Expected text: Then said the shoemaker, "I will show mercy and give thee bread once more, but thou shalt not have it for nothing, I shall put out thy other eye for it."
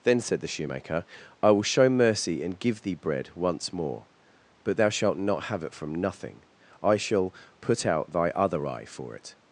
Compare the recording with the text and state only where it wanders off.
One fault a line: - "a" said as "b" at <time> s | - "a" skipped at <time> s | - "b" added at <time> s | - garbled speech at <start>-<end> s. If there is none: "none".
- "for" said as "from" at 5.7 s